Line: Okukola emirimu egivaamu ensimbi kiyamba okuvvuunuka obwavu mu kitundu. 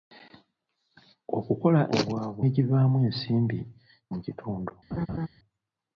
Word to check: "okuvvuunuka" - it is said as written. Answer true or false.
false